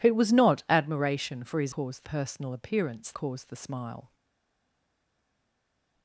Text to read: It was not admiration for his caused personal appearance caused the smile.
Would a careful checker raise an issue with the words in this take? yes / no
no